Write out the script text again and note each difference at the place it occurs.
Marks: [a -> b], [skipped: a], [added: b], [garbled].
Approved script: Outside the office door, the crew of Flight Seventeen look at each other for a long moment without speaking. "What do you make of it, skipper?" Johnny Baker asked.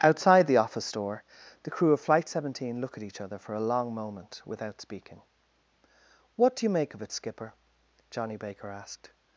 Outside the office door, the crew of Flight Seventeen look at each other for a long moment without speaking. "What do you make of it, skipper?" Johnny Baker asked.